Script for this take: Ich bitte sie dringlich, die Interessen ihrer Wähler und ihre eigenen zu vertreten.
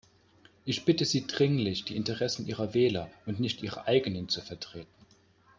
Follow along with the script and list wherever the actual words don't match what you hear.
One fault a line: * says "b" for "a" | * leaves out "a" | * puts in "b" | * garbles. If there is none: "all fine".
* puts in "nicht"